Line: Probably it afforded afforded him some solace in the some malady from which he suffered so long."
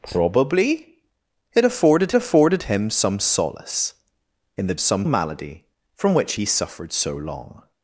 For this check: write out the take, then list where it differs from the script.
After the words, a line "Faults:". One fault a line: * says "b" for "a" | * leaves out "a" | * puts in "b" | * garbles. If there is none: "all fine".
Probably it afforded afforded him some solace in the some malady from which he suffered so long."
Faults:
all fine